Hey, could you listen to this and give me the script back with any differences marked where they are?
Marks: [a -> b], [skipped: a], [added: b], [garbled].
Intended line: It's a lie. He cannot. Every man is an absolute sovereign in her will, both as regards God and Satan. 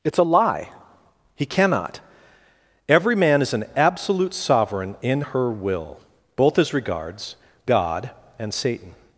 It's a lie. He cannot. Every man is an absolute sovereign in her will, both as regards God and Satan.